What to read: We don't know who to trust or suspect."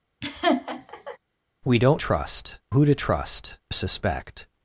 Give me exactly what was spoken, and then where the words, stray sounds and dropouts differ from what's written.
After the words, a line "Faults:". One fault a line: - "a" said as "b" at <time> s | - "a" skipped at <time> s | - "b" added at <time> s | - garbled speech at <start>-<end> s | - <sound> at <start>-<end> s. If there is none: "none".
We don't trust who to trust suspect."
Faults:
- laugh at 0.2-1.2 s
- "know" said as "trust" at 2.0 s
- "or" skipped at 3.6 s